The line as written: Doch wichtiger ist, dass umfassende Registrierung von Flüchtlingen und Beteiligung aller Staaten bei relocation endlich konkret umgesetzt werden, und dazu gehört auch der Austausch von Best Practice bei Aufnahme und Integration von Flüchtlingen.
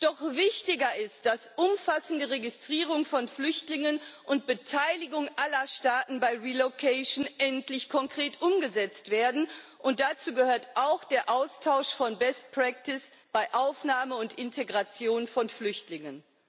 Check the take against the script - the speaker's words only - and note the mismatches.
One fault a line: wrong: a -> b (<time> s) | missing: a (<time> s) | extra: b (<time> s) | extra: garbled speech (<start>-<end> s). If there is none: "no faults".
no faults